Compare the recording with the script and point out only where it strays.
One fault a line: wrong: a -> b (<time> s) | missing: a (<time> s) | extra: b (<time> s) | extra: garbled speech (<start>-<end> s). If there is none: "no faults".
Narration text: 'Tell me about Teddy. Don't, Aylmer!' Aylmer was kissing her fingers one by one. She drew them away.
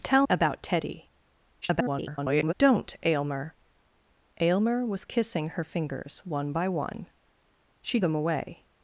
missing: me (0.3 s)
extra: garbled speech (1.6-2.5 s)
missing: drew (8.0 s)